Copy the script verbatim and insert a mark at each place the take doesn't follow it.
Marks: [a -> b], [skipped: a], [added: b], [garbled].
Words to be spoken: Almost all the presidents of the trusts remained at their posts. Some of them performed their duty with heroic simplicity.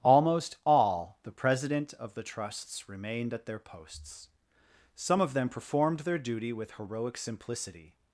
Almost all the [presidents -> president] of the trusts remained at their posts. Some of them performed their duty with heroic simplicity.